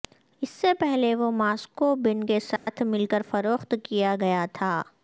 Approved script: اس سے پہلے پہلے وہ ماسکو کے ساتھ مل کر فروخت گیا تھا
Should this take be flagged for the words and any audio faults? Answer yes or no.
yes